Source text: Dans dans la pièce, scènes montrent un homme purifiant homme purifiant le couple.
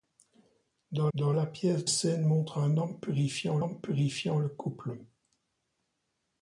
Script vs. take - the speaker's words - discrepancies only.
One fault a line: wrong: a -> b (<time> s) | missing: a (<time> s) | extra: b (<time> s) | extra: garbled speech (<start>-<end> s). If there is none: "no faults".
no faults